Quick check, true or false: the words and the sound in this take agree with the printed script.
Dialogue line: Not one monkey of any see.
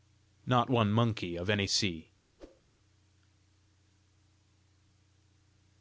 false